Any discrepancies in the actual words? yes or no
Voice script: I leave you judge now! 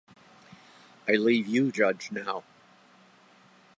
no